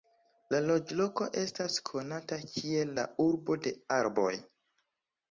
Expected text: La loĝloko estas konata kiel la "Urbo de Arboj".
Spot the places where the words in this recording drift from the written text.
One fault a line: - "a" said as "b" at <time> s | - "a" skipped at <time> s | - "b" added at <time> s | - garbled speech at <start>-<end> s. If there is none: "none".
none